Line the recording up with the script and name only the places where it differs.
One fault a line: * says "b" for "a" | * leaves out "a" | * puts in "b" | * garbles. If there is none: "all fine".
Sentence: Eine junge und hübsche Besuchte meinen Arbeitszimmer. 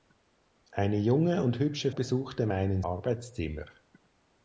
all fine